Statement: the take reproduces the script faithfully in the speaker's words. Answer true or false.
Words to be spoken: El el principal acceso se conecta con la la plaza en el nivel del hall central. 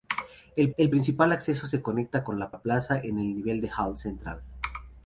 true